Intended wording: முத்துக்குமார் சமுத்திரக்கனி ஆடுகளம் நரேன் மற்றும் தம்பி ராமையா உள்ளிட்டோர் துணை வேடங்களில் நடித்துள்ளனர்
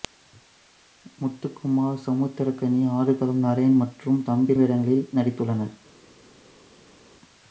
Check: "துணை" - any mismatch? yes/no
yes